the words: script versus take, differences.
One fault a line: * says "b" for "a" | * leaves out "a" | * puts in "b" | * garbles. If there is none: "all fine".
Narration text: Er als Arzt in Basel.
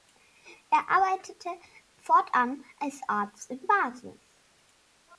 * puts in "arbeitete fortan"